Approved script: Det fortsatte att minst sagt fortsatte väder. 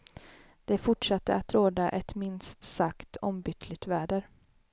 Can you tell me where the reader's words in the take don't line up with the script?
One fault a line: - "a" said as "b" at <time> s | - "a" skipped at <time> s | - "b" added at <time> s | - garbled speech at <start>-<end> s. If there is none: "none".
- "råda ett" added at 1.5 s
- "fortsatte" said as "ombytligt" at 3.2 s